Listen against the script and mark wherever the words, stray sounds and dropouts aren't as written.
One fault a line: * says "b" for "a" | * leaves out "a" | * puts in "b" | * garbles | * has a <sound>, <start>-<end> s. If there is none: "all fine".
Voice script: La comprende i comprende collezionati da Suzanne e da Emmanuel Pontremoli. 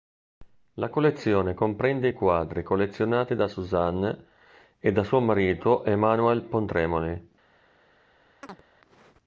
* puts in "collezione"
* says "quadri" for "comprende"
* puts in "suo marito"
* has a chirp, 8.4-8.6 s